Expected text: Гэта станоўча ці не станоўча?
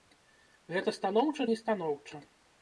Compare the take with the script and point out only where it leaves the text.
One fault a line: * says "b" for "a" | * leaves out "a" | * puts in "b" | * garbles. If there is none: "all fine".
* leaves out "ці"